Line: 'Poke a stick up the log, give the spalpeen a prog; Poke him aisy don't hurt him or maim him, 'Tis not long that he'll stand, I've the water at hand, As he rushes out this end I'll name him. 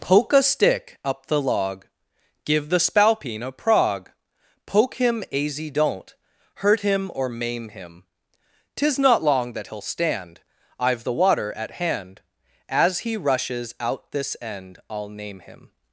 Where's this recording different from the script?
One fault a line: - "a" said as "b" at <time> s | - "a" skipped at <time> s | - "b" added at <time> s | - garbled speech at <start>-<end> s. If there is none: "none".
none